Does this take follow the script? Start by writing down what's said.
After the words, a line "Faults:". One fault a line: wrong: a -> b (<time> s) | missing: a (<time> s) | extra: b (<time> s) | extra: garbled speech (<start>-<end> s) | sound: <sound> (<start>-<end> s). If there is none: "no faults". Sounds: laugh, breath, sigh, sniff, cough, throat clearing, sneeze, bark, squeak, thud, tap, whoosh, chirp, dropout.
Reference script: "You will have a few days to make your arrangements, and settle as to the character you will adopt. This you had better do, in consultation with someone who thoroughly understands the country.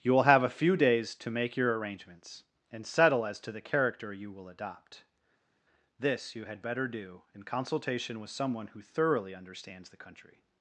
"You will have a few days to make your arrangements, and settle as to the character you will adopt. This you had better do, in consultation with someone who thoroughly understands the country.
Faults:
no faults